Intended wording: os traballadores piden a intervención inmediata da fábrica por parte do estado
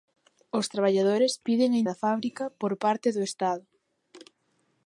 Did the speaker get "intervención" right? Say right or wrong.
wrong